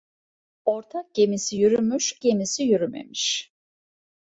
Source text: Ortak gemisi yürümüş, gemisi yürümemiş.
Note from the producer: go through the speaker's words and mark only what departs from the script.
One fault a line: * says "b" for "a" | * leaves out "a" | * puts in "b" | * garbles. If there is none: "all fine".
all fine